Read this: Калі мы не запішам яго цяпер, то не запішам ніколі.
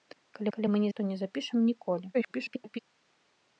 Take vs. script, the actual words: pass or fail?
fail